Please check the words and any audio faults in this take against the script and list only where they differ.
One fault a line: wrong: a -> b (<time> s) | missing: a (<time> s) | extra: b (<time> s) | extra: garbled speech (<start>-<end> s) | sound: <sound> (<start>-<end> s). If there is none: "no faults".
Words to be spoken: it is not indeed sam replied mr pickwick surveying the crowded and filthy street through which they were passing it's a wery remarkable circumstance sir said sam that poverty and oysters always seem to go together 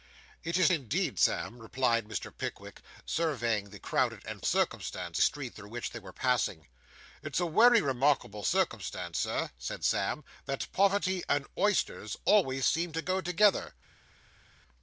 missing: not (0.7 s)
wrong: filthy -> circumstance (4.5 s)